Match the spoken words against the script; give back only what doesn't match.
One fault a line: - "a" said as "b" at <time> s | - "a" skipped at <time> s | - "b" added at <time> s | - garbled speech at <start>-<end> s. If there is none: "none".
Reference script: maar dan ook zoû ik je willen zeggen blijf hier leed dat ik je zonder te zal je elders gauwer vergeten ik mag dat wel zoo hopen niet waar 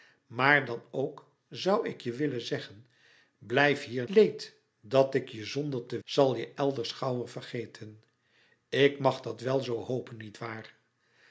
none